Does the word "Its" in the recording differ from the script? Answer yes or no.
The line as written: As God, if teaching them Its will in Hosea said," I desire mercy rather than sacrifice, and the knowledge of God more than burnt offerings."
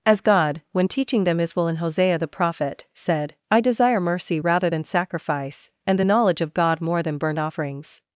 yes